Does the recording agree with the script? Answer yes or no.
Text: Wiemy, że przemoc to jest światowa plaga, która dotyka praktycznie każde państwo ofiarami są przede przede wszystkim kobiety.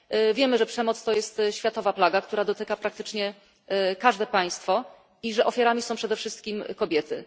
no